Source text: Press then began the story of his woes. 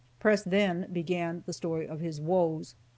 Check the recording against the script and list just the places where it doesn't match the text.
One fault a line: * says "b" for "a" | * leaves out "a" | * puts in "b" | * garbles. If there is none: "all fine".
all fine